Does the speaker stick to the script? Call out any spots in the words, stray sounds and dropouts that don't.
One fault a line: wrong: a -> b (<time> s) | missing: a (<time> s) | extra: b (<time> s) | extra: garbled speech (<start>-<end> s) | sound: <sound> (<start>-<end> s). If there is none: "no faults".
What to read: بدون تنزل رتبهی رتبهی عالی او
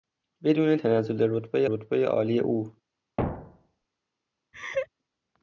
sound: thud (3.2-3.8 s)
sound: laugh (4.5-4.9 s)